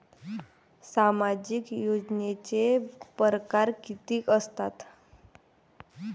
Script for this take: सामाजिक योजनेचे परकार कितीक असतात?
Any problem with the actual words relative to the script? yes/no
no